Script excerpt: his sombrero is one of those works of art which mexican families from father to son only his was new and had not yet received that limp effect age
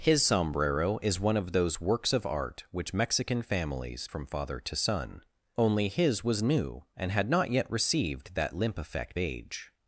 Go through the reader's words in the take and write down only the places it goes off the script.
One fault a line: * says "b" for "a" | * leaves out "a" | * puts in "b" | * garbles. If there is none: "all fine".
all fine